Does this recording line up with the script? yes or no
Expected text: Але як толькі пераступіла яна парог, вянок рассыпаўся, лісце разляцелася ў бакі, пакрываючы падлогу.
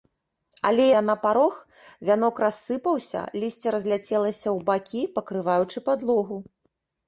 no